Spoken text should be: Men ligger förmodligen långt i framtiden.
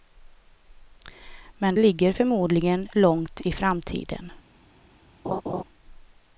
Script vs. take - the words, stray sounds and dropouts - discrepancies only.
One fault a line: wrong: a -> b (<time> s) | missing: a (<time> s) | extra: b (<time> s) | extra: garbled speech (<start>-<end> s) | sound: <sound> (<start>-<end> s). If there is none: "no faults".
sound: laugh (5.2-5.6 s)